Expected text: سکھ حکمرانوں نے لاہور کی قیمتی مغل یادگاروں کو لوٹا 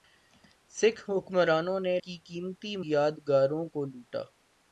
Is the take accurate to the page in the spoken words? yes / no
no